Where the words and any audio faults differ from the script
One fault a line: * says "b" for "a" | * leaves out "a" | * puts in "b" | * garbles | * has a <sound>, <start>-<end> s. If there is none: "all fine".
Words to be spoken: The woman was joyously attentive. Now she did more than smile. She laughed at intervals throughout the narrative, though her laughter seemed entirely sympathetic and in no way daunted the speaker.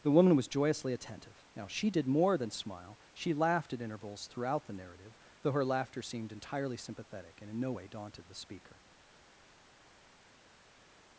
all fine